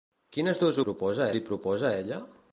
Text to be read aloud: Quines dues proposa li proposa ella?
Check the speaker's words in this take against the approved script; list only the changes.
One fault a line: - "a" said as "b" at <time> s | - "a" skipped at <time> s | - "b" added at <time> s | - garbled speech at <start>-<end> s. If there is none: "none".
none